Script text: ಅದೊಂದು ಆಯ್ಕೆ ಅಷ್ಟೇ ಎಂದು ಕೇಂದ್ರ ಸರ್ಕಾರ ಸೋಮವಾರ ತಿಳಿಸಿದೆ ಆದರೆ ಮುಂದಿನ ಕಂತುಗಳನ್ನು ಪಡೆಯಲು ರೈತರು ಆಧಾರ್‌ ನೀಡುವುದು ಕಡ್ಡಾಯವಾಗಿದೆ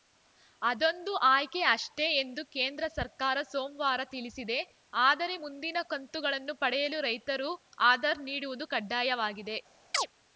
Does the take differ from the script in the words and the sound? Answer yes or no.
yes